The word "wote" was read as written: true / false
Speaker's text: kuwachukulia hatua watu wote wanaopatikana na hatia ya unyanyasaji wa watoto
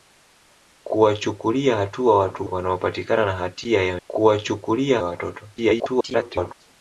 false